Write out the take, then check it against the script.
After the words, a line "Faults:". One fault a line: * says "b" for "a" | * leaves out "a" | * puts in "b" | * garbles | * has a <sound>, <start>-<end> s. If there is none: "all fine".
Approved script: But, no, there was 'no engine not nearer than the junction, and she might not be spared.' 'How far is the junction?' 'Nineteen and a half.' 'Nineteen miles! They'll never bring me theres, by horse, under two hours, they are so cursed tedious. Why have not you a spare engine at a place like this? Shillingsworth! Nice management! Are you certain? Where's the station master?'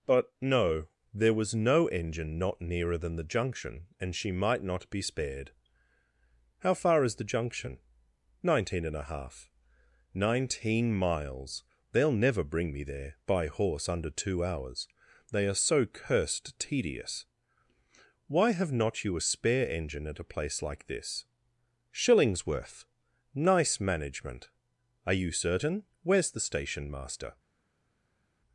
But, no, there was 'no engine not nearer than the junction, and she might not be spared.' 'How far is the junction?' 'Nineteen and a half.' 'Nineteen miles! They'll never bring me there, by horse, under two hours, they are so cursed tedious. Why have not you a spare engine at a place like this? Shillingsworth! Nice management! Are you certain? Where's the station master?'
Faults:
* says "there" for "theres"